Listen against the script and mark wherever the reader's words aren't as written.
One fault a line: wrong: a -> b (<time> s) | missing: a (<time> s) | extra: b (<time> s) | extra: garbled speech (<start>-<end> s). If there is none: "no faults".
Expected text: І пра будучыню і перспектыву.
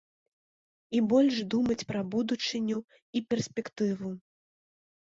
extra: больш думаць (1.1 s)